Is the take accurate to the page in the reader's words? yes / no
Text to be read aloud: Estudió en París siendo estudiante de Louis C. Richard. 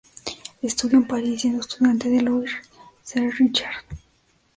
yes